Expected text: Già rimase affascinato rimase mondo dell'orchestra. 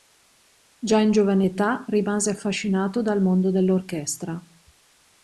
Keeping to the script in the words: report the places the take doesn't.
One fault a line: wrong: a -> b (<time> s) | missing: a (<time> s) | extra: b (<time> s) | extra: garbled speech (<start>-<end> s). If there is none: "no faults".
extra: in giovane età (1.0 s)
wrong: rimase -> dal (3.0 s)